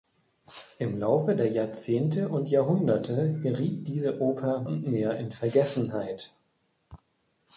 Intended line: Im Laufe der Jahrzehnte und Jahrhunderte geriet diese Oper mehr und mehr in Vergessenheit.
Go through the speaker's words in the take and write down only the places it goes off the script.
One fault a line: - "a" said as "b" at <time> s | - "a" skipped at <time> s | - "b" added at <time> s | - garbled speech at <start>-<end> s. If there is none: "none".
- "mehr" skipped at 4.6 s